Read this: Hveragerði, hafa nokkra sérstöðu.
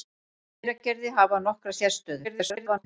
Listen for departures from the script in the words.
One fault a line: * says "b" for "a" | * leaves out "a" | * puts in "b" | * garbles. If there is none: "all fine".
* garbles